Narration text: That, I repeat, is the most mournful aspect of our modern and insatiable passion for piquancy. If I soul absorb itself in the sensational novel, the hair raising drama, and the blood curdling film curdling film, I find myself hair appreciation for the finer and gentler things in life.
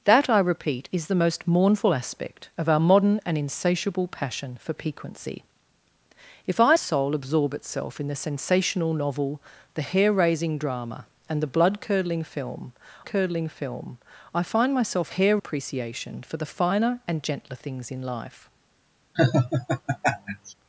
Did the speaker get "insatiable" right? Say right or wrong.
right